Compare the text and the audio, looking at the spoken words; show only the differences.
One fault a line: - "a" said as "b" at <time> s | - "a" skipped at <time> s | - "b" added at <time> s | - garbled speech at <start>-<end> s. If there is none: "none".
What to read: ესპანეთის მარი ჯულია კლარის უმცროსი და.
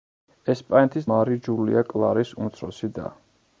none